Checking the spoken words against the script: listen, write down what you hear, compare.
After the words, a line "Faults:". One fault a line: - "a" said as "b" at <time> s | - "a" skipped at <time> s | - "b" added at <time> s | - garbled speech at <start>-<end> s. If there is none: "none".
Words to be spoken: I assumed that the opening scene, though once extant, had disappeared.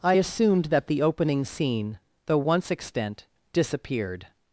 I assumed that the opening scene, though once extant, disappeared.
Faults:
- "had" skipped at 3.3 s